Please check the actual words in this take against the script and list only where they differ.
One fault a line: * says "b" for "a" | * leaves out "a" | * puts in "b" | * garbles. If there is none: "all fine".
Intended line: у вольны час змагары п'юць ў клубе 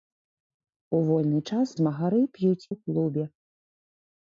all fine